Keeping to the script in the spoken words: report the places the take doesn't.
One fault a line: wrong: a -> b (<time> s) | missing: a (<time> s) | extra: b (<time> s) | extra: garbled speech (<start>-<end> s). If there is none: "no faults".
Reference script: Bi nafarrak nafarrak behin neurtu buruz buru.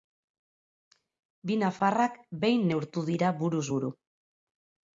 missing: nafarrak (2.2 s)
extra: dira (3.1 s)